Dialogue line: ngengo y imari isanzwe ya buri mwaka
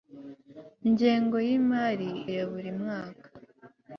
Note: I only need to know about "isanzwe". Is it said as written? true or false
false